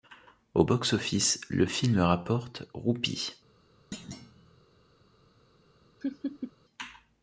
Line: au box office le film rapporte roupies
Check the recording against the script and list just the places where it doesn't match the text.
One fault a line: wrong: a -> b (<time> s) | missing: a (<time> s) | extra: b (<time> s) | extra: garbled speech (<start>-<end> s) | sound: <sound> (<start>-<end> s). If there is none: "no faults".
sound: thud (3.9-4.6 s)
sound: laugh (6.0-6.5 s)